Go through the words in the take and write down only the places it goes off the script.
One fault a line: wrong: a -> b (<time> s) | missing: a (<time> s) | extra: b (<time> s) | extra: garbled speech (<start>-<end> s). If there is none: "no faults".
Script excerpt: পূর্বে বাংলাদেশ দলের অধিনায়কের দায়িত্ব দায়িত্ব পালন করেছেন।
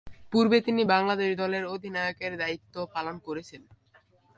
extra: তিনি (0.6 s)
missing: দায়িত্ব (2.7 s)